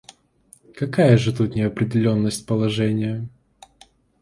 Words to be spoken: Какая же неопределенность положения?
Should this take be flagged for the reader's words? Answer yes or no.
yes